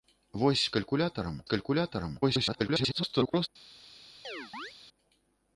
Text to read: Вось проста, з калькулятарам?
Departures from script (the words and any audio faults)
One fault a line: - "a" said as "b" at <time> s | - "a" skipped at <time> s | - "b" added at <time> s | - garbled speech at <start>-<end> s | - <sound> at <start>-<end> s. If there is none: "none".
- "проста" said as "калькулятарам" at 0.7 s
- garbled speech at 2.2-3.5 s
- chirp at 4.2-4.7 s